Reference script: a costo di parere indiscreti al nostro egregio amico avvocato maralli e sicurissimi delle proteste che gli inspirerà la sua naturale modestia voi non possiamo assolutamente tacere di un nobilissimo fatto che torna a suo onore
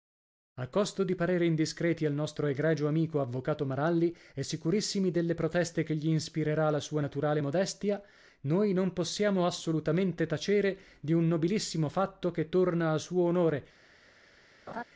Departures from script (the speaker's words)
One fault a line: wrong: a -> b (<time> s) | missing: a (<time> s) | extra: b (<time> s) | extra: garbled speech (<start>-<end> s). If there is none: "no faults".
wrong: voi -> noi (8.4 s)